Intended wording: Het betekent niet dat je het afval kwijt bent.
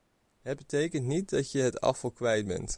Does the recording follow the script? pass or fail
pass